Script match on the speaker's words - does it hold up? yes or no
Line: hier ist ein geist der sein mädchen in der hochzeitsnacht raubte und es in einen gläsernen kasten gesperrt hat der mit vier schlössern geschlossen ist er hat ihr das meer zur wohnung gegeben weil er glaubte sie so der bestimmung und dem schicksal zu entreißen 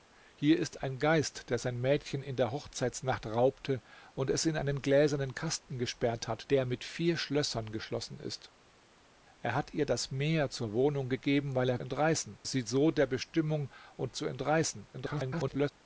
no